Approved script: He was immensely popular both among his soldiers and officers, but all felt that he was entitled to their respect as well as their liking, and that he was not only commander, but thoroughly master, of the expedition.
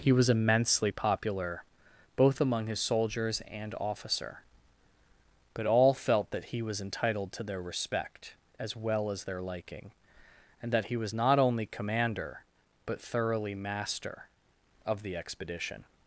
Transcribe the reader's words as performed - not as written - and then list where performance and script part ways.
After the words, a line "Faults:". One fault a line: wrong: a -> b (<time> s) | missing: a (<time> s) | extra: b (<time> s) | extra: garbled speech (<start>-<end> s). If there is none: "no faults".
He was immensely popular both among his soldiers and officer, but all felt that he was entitled to their respect as well as their liking, and that he was not only commander, but thoroughly master, of the expedition.
Faults:
wrong: officers -> officer (3.8 s)